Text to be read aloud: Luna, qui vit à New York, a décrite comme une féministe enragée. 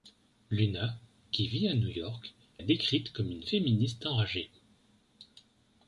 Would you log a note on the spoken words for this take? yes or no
no